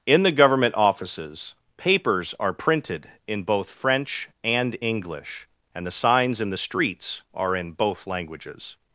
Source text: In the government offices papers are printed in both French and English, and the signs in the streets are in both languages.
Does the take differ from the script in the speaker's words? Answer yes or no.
no